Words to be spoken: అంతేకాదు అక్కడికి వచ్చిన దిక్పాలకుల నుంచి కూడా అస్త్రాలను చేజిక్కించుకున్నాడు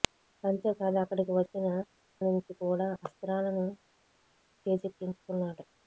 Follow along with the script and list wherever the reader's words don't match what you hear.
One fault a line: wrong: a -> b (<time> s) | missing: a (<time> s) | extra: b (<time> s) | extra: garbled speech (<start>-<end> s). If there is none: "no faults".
missing: దిక్పాలకుల (1.7 s)